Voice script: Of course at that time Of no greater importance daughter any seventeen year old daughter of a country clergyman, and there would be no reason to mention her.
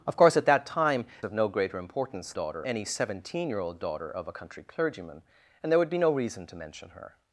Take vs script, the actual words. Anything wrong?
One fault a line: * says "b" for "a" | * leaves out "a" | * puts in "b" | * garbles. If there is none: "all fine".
all fine